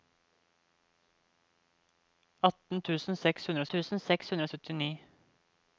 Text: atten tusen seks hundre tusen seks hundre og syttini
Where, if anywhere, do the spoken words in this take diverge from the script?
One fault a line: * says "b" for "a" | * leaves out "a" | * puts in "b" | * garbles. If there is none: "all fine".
all fine